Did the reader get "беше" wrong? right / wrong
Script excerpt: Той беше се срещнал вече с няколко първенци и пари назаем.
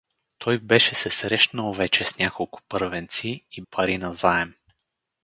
right